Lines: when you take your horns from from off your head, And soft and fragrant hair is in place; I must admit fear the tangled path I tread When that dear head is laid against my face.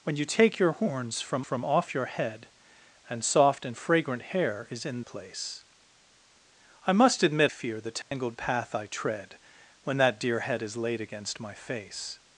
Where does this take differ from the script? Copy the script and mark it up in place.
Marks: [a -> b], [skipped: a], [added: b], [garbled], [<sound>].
when you take your horns from from off your head, And soft and fragrant hair is in place; I must admit fear the tangled [dropout] path I tread When that dear head is laid against my face.